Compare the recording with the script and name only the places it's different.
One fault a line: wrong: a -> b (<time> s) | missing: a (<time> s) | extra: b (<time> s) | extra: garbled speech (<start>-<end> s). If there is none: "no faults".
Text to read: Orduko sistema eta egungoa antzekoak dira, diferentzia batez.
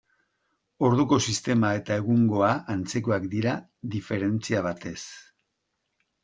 no faults